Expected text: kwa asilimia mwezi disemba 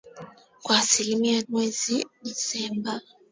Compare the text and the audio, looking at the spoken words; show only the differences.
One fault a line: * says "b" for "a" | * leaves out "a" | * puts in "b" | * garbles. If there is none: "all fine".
all fine